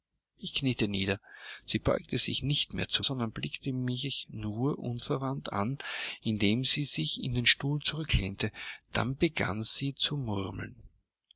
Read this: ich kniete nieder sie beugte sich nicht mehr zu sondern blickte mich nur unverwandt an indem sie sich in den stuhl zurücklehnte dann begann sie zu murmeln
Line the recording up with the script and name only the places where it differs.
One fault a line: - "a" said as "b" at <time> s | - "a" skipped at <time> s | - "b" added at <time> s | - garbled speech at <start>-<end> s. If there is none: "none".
none